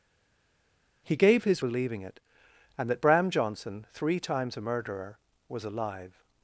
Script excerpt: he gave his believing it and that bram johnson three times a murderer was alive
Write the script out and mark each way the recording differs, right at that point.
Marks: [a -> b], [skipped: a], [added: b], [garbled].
he gave his believing it and that bram johnson three times a murderer was alive